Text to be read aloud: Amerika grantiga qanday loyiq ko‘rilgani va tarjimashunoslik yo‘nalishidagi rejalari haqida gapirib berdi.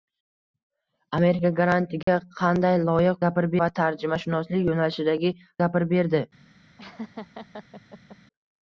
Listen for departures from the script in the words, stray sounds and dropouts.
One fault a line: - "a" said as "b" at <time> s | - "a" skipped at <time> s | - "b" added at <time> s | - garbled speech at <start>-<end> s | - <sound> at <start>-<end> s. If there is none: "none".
- dropout at 2.0-2.1 s
- "ko‘rilgani" said as "gapirib" at 3.3 s
- "rejalari haqida" skipped at 5.3 s
- laugh at 6.8-8.2 s